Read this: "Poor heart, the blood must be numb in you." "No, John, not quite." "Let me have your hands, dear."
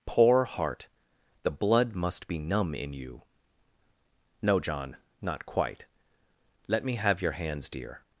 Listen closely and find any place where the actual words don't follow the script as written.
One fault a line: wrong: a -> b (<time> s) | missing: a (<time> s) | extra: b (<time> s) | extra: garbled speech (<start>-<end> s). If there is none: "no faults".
no faults